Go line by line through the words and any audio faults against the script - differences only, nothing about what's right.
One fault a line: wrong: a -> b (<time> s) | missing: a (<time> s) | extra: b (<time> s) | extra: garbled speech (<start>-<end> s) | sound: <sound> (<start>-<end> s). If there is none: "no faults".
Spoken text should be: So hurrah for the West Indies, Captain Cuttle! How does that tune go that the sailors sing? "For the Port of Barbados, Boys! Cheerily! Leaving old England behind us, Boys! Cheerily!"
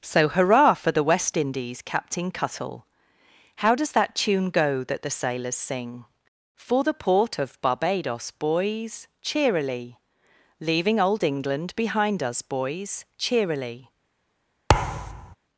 sound: thud (14.7-15.4 s)